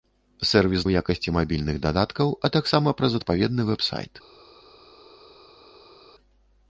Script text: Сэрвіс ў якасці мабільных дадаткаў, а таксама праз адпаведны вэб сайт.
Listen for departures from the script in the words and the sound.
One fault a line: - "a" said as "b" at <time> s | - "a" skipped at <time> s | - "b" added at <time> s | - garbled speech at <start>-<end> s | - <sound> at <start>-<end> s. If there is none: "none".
none